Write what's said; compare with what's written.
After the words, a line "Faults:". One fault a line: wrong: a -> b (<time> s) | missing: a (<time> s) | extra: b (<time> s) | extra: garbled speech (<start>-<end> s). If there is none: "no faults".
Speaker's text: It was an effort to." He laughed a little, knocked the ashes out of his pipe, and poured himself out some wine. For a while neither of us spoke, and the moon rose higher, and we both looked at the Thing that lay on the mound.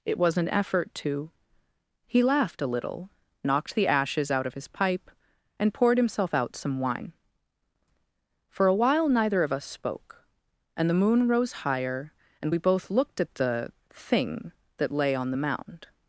It was an effort to." He laughed a little, knocked the ashes out of his pipe, and poured himself out some wine. For a while neither of us spoke, and the moon rose higher, and we both looked at the Thing that lay on the mound.
Faults:
no faults